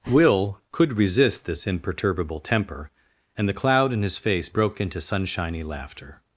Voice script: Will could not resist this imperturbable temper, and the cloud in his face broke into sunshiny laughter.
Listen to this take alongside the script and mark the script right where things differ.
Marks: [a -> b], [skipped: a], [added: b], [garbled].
Will could [skipped: not] resist this imperturbable temper, and the cloud in his face broke into sunshiny laughter.